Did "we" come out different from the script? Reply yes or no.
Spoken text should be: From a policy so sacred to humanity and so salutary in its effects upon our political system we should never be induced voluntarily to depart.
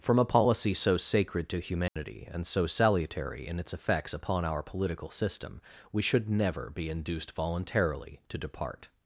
no